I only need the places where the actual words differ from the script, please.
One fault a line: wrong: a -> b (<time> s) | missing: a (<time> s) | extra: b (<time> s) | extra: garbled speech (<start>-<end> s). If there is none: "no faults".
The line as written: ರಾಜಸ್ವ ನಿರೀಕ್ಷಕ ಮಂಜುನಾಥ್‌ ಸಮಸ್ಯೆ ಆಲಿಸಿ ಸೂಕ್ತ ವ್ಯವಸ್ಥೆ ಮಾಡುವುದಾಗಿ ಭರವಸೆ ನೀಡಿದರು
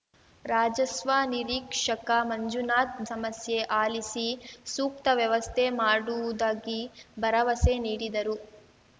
no faults